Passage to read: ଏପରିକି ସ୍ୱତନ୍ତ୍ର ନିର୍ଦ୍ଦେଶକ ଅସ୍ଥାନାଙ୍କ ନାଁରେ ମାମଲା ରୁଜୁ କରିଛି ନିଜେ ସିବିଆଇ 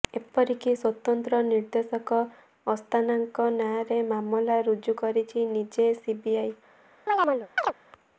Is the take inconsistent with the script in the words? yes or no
no